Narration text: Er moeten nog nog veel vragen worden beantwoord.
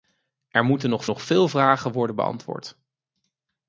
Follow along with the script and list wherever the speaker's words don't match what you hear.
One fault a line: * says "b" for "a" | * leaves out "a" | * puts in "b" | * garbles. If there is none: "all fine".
all fine